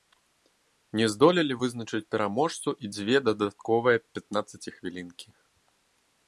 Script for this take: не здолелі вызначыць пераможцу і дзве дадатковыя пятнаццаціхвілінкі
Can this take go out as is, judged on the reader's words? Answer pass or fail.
pass